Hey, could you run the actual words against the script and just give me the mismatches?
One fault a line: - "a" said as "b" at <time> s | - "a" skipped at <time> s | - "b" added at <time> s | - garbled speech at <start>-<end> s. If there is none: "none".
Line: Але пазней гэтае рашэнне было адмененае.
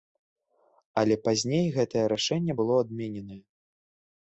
none